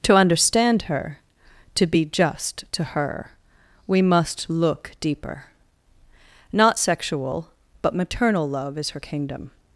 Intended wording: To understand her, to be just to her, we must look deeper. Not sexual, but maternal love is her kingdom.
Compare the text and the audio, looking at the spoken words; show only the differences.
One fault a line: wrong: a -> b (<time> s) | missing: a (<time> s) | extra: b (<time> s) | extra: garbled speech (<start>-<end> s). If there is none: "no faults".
no faults